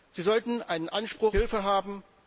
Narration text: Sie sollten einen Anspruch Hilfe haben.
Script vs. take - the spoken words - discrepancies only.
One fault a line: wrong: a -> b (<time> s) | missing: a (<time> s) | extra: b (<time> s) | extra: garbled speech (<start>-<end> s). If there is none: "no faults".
no faults